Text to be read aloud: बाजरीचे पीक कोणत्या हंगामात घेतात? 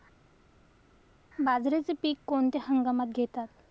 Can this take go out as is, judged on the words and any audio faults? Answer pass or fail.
pass